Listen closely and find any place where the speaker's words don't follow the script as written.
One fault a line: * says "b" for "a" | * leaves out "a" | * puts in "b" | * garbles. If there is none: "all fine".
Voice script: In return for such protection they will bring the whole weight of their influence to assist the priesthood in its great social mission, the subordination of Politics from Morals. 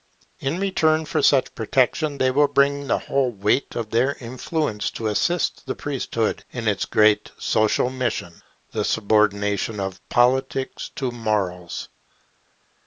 * says "to" for "from"